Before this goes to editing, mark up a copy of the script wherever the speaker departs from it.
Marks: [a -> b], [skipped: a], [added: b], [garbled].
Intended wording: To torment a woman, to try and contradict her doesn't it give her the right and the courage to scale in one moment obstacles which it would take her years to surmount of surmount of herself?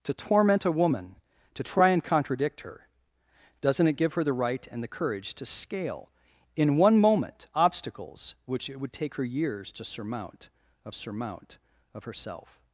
To torment a woman, to try and contradict her doesn't it give her the right and the courage to scale in one moment obstacles which it would take her years to surmount of surmount of herself?